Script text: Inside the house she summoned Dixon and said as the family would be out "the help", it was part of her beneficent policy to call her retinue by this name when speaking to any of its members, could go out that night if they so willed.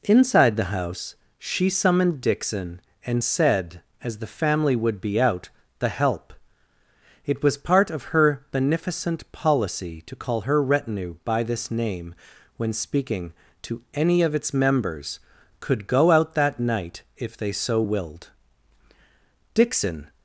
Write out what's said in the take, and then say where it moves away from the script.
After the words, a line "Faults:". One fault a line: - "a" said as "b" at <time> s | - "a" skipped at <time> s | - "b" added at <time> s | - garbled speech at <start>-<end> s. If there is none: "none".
Inside the house she summoned Dixon and said as the family would be out "the help", it was part of her beneficent policy to call her retinue by this name when speaking to any of its members, could go out that night if they so willed. Dixon
Faults:
- "Dixon" added at 19.5 s